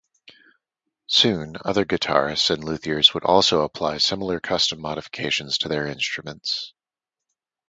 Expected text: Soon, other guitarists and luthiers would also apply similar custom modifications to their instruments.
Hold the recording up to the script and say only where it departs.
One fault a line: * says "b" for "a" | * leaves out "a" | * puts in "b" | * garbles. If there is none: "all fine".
all fine